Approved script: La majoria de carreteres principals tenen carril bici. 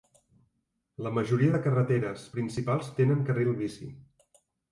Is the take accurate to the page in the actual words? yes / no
yes